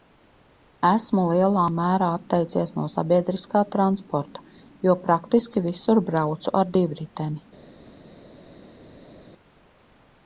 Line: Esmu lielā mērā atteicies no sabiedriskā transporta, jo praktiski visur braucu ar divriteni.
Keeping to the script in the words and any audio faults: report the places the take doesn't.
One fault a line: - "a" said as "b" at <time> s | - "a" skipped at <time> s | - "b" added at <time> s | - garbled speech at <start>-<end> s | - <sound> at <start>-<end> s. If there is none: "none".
none